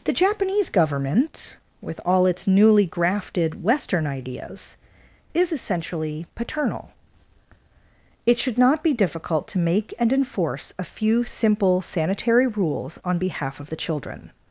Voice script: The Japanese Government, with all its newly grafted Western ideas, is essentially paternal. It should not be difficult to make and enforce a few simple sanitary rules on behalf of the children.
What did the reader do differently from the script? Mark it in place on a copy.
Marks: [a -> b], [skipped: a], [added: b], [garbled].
The Japanese Government, with all its newly grafted Western ideas, is essentially paternal. It should not be difficult to make and enforce a few simple sanitary rules on behalf of the children.